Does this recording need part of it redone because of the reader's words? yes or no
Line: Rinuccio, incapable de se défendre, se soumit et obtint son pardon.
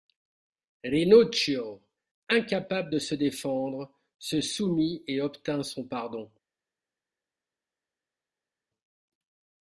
no